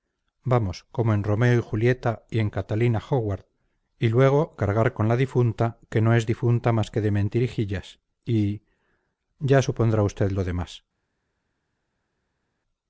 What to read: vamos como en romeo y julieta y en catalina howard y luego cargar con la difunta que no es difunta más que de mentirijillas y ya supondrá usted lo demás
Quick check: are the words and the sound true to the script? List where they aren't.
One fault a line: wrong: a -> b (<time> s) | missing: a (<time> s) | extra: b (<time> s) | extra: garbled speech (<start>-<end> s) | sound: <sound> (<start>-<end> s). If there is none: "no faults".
no faults